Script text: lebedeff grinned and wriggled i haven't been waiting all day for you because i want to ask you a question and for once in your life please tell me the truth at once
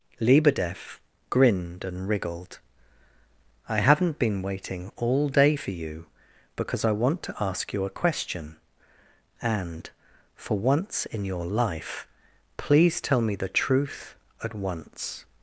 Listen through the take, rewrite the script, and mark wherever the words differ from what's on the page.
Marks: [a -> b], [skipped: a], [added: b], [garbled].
lebedeff grinned and wriggled i haven't been waiting all day for you because i want to ask you a question and for once in your life please tell me the truth at once